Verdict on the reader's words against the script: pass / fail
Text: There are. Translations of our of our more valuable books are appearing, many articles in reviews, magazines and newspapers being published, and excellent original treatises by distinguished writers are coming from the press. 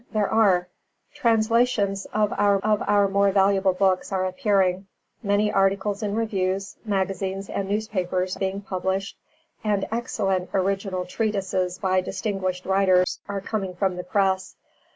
pass